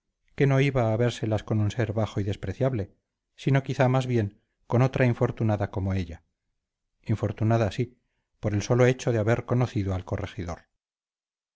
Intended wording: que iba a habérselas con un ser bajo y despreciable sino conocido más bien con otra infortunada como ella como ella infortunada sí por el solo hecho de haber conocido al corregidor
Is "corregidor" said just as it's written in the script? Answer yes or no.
yes